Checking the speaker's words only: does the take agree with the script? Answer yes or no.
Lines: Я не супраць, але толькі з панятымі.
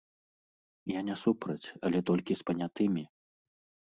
yes